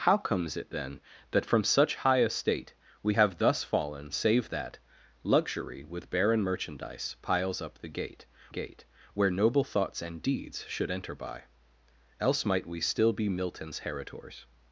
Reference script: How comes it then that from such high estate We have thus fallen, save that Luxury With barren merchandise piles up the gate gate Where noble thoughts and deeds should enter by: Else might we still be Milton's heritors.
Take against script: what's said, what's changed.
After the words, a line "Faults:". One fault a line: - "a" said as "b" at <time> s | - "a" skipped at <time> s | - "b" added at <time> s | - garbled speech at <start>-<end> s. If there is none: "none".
How comes it then that from such high estate We have thus fallen, save that Luxury With barren merchandise piles up the gate gate Where noble thoughts and deeds should enter by: Else might we still be Milton's heritors.
Faults:
none